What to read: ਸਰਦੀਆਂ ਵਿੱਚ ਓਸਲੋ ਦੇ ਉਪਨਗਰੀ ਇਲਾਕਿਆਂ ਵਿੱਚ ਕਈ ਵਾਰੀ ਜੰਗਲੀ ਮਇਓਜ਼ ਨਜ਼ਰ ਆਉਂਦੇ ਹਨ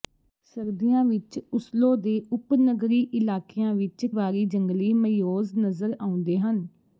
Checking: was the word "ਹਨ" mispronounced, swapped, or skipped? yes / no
no